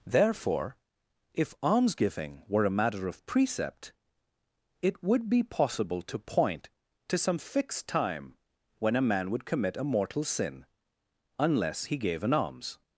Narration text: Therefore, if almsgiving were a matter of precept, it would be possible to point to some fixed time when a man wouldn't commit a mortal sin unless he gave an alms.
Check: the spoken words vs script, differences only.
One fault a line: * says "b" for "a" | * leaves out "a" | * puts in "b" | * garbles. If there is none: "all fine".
* says "would" for "wouldn't"